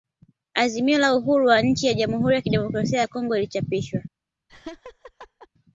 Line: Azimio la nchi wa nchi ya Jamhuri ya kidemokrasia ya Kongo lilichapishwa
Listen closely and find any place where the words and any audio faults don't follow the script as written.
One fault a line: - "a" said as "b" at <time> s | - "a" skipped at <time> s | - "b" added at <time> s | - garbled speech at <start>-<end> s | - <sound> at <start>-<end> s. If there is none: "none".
- "nchi" said as "uhuru" at 1.1 s
- laugh at 4.5-5.5 s